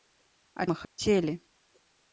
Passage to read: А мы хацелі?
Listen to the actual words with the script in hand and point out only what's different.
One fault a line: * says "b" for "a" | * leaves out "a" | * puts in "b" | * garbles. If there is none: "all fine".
all fine